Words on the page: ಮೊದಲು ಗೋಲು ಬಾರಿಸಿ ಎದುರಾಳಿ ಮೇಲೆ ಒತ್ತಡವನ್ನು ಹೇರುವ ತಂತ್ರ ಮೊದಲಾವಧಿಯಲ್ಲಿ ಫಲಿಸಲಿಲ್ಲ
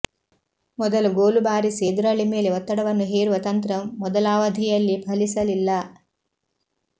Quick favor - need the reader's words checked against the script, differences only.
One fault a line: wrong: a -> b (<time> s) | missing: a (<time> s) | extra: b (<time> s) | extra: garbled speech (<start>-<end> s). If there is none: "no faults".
no faults